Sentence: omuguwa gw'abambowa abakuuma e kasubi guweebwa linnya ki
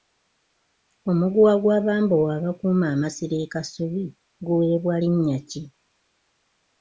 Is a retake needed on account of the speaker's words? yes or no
yes